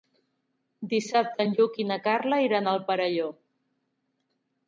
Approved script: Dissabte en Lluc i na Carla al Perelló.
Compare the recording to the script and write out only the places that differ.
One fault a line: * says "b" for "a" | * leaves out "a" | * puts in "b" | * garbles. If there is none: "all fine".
* puts in "iran"